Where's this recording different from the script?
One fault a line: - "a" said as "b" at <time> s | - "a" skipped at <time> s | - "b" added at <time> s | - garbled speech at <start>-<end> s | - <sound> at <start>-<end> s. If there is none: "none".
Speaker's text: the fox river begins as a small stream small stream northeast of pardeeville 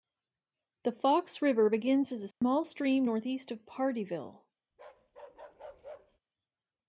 - dropout at 2.3-2.4 s
- "small stream" skipped at 3.0 s
- bark at 4.7-6.2 s